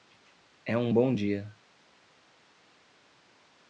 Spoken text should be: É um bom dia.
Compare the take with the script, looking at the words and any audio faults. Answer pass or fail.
pass